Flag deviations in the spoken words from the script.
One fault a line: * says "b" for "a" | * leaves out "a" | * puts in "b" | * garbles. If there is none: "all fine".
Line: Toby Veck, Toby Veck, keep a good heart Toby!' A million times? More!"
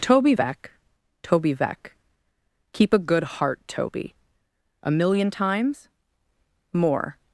all fine